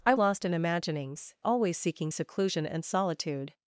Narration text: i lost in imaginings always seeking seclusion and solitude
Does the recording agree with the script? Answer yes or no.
yes